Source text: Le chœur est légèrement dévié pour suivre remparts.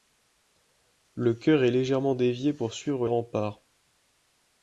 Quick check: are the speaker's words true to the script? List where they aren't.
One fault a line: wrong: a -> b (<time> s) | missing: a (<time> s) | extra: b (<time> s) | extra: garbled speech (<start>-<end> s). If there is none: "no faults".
no faults